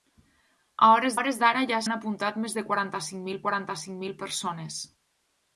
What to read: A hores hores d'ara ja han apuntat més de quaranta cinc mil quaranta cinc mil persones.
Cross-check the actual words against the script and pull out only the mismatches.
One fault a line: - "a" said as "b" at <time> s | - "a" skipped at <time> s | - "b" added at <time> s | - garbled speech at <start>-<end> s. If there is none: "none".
none